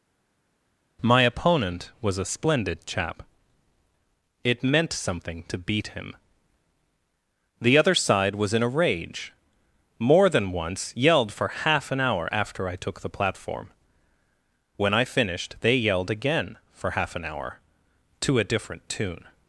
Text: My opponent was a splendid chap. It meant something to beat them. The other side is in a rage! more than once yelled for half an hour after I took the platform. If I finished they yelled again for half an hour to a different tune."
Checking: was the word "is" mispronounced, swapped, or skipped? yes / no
yes